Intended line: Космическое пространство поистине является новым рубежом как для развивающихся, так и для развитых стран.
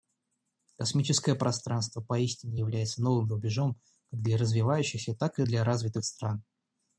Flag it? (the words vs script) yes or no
no